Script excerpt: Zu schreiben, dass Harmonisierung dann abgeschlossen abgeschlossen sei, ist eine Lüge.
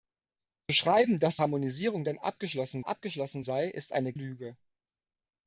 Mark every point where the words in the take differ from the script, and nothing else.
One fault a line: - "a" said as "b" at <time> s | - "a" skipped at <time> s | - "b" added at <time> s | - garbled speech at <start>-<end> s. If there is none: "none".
none